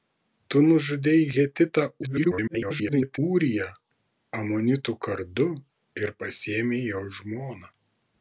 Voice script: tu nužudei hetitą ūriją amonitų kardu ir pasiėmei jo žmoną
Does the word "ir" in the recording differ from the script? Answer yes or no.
no